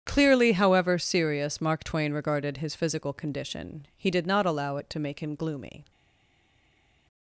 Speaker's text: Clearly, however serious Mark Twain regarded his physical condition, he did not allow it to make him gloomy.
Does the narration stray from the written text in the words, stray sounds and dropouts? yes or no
no